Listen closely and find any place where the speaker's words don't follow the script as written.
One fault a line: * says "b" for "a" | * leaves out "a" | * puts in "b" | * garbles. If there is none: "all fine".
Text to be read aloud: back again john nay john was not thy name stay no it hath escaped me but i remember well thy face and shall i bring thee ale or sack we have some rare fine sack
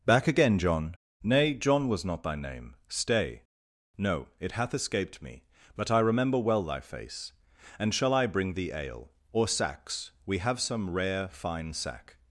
* says "sacks" for "sack"